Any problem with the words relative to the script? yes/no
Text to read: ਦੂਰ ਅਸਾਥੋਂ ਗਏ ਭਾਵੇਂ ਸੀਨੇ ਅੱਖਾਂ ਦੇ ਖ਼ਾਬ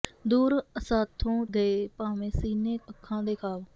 no